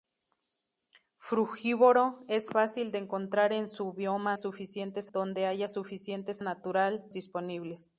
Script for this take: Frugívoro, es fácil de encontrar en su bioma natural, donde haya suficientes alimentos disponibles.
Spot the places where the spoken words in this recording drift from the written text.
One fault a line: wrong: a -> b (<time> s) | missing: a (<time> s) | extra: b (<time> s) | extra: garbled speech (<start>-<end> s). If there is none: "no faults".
wrong: natural -> suficientes (4.4 s)
wrong: alimentos -> natural (6.4 s)